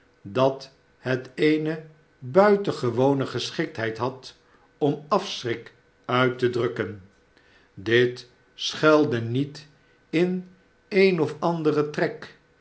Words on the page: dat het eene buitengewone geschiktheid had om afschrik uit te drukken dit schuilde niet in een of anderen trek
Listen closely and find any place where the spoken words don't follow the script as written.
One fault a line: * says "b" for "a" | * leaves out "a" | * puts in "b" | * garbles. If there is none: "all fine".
all fine